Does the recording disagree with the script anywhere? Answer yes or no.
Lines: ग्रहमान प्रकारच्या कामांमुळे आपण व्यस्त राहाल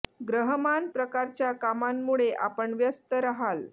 no